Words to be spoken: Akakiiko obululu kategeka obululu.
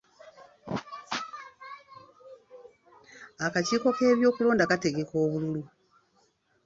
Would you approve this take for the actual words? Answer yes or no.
no